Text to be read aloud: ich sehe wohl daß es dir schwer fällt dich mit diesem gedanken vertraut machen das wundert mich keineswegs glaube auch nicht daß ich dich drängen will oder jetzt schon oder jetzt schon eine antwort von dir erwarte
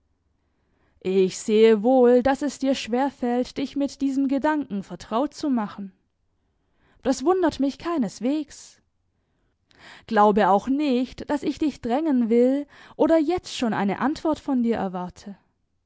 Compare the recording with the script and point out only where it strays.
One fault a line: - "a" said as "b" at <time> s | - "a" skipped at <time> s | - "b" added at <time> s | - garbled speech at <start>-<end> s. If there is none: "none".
- "zu" added at 5.3 s
- "oder jetzt schon" skipped at 13.7 s